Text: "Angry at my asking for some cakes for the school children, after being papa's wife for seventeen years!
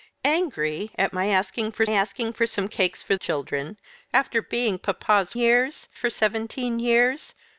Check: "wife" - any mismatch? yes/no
yes